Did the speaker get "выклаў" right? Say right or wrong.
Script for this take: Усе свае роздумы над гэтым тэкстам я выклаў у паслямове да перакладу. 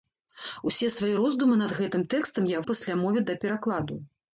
wrong